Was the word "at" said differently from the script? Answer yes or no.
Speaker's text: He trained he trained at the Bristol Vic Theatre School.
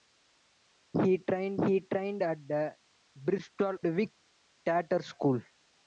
no